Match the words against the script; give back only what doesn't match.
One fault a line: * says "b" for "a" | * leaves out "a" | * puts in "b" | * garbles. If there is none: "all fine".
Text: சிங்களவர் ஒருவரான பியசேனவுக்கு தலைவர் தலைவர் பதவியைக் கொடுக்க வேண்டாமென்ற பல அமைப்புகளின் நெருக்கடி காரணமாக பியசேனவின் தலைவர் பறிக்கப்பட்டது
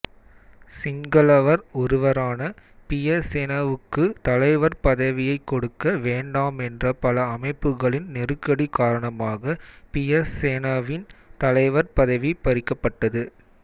* leaves out "தலைவர்"
* puts in "பதவி"